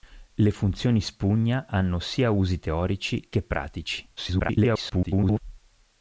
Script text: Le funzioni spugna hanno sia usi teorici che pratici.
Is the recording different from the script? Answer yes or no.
yes